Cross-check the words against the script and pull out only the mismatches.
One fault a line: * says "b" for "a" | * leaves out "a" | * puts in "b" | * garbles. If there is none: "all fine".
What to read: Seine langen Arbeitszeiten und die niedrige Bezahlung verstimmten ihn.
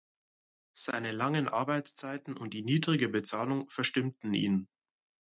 all fine